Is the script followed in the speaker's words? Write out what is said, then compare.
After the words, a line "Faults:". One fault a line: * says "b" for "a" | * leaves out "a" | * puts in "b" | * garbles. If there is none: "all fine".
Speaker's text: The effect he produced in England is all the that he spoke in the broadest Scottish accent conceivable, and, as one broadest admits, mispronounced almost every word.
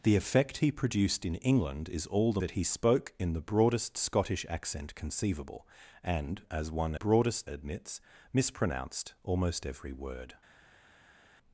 The effect he produced in England is all the that he spoke in the broadest Scottish accent conceivable, and, as one broadest admits, mispronounced almost every word.
Faults:
all fine